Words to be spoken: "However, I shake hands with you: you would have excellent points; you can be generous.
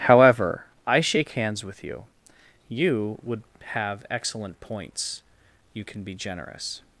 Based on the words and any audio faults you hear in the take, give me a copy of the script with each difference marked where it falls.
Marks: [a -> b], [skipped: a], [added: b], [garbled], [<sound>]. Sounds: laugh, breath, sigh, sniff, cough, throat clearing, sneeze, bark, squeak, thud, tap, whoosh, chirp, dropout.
"However, I shake hands with you: you would have excellent points; you can be generous.